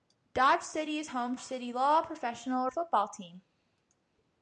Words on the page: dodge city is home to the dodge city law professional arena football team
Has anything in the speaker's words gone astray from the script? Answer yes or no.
yes